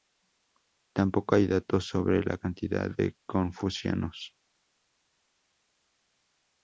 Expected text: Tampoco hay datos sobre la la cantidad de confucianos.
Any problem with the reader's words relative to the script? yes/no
yes